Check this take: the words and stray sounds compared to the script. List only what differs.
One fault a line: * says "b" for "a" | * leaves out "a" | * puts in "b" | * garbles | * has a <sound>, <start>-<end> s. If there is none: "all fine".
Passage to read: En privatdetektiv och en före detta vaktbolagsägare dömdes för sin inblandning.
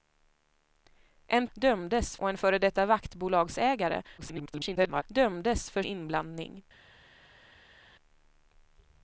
* says "dömdes" for "privatdetektiv"
* garbles
* leaves out "sin"